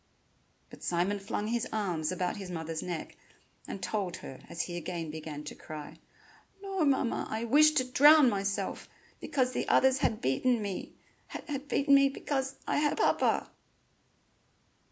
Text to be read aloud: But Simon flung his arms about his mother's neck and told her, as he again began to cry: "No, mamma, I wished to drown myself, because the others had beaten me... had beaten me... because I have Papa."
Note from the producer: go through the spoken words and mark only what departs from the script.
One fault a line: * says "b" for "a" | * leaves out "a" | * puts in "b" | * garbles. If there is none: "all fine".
all fine